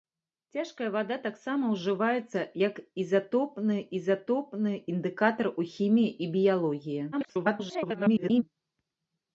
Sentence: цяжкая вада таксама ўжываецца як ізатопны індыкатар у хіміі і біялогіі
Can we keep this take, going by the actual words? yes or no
no